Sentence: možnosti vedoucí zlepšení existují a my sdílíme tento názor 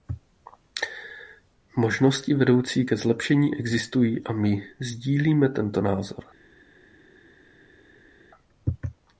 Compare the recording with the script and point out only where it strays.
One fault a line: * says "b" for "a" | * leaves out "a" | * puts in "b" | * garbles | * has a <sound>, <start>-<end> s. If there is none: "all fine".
* puts in "ke"